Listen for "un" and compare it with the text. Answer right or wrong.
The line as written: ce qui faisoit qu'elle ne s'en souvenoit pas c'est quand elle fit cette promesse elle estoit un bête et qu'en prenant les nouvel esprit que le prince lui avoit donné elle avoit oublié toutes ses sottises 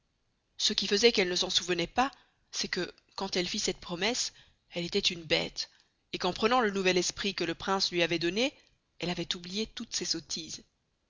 wrong